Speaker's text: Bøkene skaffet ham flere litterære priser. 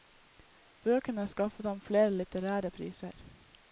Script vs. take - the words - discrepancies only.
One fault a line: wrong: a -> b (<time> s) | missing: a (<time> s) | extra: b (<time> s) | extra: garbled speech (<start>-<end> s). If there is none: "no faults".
no faults